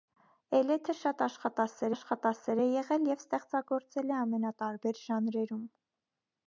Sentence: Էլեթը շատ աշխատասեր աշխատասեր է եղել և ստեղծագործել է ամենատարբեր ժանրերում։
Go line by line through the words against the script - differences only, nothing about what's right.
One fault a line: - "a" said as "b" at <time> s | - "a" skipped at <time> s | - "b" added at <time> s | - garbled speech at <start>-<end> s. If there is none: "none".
none